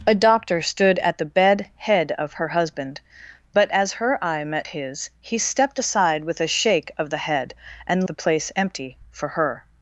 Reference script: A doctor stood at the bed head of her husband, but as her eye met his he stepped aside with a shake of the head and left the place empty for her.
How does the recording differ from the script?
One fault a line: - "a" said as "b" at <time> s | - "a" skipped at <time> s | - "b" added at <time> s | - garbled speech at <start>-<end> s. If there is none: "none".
- "left" skipped at 8.1 s